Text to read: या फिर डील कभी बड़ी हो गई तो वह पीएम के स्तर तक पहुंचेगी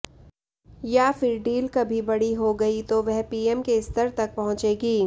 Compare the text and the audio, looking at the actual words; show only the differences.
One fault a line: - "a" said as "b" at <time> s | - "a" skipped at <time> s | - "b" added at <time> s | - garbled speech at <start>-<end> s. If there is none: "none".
none